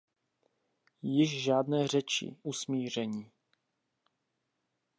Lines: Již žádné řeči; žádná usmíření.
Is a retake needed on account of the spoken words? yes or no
yes